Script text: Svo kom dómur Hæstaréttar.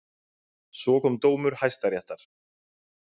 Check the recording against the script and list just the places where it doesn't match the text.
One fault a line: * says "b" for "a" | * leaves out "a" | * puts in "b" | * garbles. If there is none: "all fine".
all fine